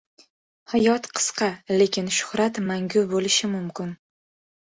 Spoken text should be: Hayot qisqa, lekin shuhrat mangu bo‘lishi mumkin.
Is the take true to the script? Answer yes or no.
yes